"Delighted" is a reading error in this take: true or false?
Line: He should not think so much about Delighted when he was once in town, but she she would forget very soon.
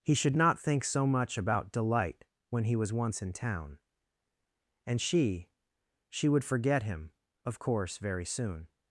true